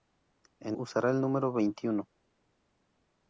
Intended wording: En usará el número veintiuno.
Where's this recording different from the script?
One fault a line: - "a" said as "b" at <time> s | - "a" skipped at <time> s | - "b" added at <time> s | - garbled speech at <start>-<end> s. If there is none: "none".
none